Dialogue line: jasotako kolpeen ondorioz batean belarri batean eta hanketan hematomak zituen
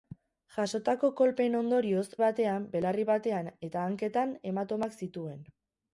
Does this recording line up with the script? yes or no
yes